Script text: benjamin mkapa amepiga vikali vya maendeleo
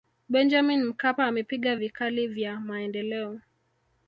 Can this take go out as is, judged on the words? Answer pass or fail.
pass